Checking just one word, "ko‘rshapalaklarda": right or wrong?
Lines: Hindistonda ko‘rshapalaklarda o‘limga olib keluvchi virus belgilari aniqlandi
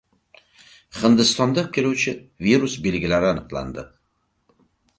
wrong